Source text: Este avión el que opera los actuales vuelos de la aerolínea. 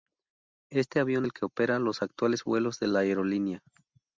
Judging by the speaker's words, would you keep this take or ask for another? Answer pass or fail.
pass